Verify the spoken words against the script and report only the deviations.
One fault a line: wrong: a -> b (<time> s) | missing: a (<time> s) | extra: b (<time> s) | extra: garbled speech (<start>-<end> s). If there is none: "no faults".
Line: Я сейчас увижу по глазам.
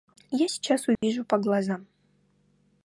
no faults